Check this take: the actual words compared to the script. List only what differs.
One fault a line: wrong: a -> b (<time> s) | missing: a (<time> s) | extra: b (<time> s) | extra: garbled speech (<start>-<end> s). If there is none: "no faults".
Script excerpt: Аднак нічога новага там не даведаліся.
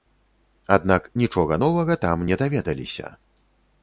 no faults